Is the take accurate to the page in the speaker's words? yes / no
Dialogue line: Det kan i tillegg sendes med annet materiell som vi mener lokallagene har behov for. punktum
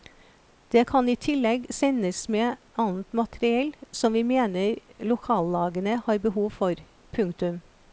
yes